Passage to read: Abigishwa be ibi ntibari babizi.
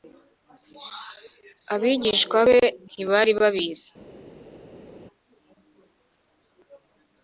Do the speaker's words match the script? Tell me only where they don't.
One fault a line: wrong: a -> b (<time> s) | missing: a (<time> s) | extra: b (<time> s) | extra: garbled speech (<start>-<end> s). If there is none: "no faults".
missing: ibi (2.6 s)